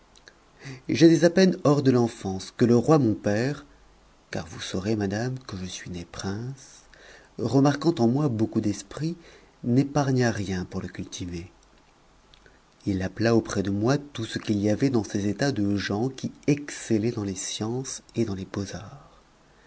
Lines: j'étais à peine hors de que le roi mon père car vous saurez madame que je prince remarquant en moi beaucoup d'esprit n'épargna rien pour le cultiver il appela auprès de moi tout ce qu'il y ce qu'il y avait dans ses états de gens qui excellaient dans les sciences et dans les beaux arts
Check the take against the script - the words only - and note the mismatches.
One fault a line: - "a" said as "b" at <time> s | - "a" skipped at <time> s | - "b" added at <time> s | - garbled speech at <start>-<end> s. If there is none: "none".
- "l'enfance" added at 1.9 s
- "suis né" added at 5.7 s
- "ce qu'il y" skipped at 14.7 s